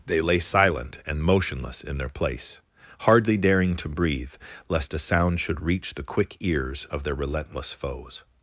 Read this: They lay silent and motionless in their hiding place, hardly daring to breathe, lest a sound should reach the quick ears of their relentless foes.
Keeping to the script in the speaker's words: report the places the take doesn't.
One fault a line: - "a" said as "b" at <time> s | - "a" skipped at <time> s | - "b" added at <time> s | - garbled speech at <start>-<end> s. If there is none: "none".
- "hiding" skipped at 2.1 s